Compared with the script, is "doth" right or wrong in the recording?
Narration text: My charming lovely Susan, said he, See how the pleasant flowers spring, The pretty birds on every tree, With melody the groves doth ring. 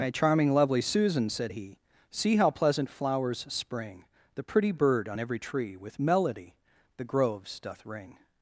right